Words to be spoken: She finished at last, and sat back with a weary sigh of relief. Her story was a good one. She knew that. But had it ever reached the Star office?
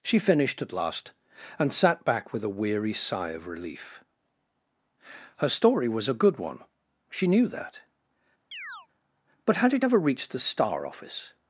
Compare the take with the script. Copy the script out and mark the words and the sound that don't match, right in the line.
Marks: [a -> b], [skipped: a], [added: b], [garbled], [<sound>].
She finished at last, and sat back with a weary sigh of relief. Her story was a good one. She knew that. [chirp] But had it ever reached the Star office?